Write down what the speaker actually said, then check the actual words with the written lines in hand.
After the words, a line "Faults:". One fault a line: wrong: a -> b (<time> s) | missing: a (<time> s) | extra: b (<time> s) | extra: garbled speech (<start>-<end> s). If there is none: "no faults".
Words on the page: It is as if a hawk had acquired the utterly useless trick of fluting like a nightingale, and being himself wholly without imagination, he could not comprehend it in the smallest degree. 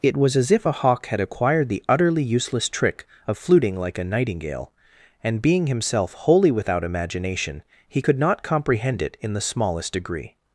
It was as if a hawk had acquired the utterly useless trick of fluting like a nightingale, and being himself wholly without imagination, he could not comprehend it in the smallest degree.
Faults:
wrong: is -> was (0.2 s)